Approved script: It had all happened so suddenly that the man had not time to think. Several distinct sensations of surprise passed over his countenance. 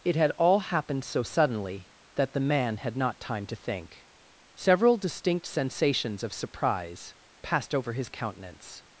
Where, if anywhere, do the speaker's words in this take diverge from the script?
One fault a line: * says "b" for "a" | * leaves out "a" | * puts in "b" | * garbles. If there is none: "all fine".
all fine